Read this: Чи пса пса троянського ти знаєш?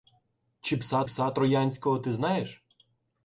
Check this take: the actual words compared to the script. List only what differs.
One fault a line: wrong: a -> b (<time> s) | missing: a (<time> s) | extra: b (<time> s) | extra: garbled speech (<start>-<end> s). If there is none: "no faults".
no faults